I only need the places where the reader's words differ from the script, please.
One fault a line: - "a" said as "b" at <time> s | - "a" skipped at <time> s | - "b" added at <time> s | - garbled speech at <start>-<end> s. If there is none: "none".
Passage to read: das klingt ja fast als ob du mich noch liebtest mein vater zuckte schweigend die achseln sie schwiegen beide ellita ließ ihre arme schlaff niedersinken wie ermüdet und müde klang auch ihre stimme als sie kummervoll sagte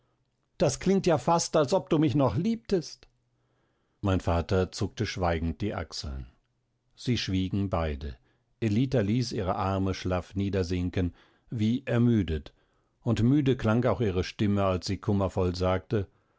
none